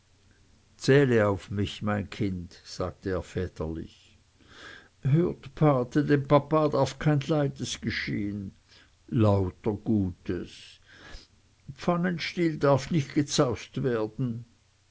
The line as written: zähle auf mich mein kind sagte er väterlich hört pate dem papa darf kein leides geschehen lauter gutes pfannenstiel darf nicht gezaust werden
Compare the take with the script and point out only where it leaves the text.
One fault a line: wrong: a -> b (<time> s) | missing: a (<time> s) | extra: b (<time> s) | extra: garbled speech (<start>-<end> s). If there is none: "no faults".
no faults